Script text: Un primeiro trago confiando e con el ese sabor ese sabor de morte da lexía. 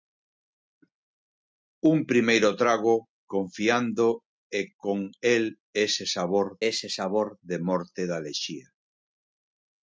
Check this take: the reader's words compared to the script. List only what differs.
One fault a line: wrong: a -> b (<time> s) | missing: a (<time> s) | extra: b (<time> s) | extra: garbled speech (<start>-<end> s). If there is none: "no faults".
no faults